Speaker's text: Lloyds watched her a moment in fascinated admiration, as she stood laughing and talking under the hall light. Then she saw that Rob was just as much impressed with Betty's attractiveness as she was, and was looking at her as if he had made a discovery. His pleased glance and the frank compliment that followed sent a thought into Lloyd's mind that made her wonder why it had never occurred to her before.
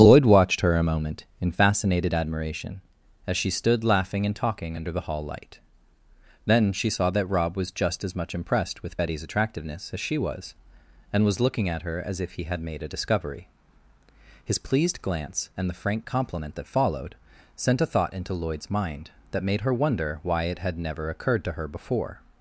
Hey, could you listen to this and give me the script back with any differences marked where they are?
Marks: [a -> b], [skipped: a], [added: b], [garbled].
[Lloyds -> Lloyd] watched her a moment in fascinated admiration, as she stood laughing and talking under the hall light. Then she saw that Rob was just as much impressed with Betty's attractiveness as she was, and was looking at her as if he had made a discovery. His pleased glance and the frank compliment that followed sent a thought into Lloyd's mind that made her wonder why it had never occurred to her before.